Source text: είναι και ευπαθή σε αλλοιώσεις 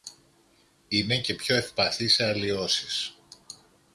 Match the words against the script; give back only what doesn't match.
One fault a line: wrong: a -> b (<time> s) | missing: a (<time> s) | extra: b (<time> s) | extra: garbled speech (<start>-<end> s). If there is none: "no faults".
extra: πιο (1.3 s)